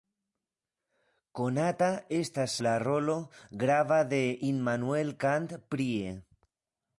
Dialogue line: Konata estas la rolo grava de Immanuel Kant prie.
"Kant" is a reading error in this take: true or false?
false